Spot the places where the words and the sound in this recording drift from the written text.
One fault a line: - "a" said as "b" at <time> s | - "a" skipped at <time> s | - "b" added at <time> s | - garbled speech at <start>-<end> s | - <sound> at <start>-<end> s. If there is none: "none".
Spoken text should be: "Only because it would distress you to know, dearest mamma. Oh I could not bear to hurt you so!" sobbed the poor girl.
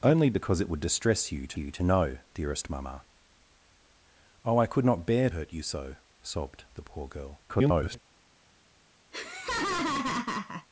- "you to" added at 1.6 s
- "to" skipped at 5.3 s
- garbled speech at 7.5-8.0 s
- laugh at 9.1-10.7 s